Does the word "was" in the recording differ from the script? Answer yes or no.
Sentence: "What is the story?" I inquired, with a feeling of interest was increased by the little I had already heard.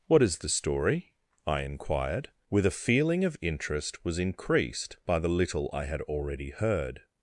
no